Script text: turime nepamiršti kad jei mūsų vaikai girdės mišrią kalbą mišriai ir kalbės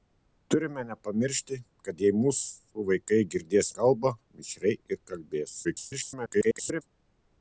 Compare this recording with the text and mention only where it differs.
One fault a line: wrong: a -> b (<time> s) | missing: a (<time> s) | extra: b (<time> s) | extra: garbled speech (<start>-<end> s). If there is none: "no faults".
missing: mišrią (3.7 s)
extra: garbled speech (5.6-6.8 s)